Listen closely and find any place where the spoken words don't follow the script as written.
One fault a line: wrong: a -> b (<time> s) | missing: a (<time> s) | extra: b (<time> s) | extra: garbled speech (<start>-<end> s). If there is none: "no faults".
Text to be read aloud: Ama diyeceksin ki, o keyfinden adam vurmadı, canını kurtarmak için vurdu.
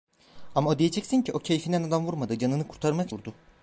missing: için (3.1 s)